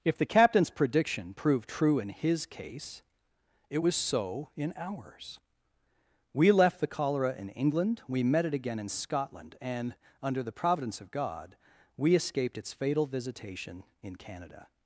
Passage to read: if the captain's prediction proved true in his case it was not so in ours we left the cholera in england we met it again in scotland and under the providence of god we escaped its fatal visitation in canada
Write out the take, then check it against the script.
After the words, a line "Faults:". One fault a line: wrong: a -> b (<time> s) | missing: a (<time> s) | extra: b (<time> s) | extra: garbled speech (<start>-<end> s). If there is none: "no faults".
if the captain's prediction proved true in his case it was so in ours we left the cholera in england we met it again in scotland and under the providence of god we escaped its fatal visitation in canada
Faults:
missing: not (3.9 s)